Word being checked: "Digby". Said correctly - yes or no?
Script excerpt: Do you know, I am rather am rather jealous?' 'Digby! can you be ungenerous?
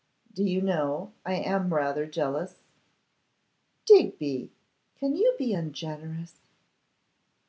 yes